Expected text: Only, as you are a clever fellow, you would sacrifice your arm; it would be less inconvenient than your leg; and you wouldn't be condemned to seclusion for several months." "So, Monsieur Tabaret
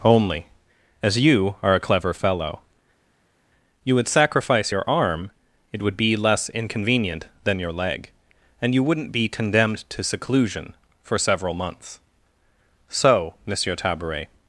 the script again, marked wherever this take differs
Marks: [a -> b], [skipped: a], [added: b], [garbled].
Only, as you are a clever fellow, you would sacrifice your arm; it would be less inconvenient than your leg; and you wouldn't be condemned to seclusion for several months." "So, Monsieur Tabaret